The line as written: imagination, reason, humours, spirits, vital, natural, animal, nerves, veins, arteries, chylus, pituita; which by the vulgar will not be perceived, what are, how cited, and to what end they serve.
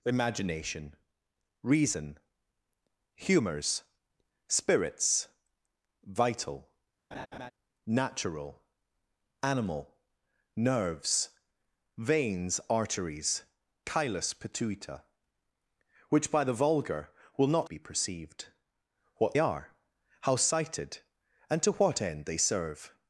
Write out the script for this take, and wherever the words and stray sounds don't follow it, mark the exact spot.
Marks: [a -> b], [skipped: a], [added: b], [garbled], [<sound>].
imagination, reason, humours, spirits, vital, [laugh] natural, animal, nerves, veins, arteries, chylus, pituita; which by the vulgar will not be perceived, what are, how cited, and to what end they serve.